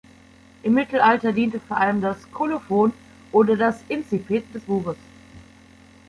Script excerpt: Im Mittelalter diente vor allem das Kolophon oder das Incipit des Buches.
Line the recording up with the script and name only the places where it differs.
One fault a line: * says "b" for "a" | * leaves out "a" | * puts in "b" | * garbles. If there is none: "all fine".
all fine